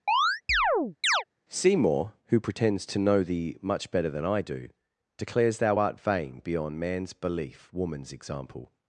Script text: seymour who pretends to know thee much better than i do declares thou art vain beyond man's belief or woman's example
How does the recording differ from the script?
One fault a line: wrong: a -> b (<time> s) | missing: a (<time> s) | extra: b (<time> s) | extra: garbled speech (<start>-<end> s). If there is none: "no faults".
missing: or (7.7 s)